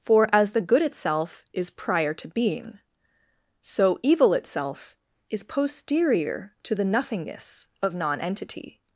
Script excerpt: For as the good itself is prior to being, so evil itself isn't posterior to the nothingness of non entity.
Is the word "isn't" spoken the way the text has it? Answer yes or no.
no